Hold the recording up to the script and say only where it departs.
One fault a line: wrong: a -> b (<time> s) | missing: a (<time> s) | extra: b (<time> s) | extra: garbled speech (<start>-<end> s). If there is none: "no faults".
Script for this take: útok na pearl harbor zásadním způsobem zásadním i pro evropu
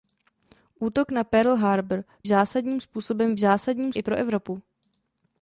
no faults